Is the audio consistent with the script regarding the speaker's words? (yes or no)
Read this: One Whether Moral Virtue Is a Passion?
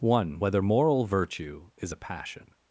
yes